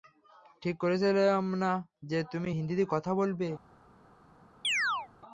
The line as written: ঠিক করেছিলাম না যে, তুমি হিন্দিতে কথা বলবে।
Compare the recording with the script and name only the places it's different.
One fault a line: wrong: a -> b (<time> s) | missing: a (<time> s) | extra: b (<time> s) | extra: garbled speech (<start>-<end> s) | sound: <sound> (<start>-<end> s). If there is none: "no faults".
sound: chirp (4.6-5.1 s)